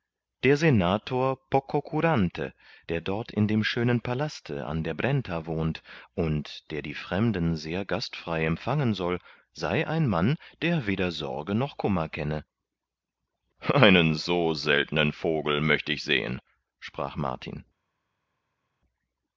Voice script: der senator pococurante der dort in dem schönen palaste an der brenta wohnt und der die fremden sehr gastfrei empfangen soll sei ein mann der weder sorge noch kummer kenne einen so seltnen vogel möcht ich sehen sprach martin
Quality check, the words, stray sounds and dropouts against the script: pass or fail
pass